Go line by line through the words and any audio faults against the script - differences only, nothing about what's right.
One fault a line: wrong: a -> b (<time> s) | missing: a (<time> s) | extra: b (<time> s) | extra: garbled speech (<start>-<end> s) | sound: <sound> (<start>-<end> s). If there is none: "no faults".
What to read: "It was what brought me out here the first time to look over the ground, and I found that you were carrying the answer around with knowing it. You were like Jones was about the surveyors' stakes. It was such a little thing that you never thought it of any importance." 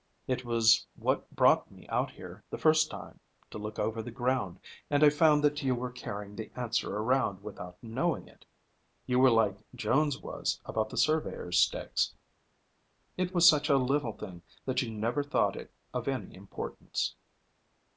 wrong: with -> without (7.4 s)